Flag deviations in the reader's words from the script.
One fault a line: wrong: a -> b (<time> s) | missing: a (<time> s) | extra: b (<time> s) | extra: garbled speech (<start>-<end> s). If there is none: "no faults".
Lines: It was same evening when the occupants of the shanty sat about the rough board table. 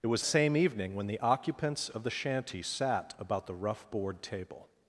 no faults